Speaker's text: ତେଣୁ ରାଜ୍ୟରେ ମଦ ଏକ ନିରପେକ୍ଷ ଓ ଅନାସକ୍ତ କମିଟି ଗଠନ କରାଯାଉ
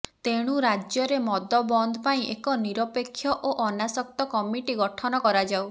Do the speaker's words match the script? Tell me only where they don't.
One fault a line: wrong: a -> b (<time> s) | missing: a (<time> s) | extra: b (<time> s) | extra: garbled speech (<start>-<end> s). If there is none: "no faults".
extra: ବନ୍ଦ ପାଇଁ (1.7 s)